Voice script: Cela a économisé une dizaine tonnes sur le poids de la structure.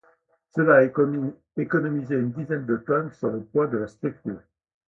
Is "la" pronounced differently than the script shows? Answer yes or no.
no